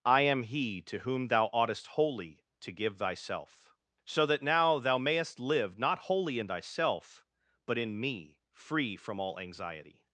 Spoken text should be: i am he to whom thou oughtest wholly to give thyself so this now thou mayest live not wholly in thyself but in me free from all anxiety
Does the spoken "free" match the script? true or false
true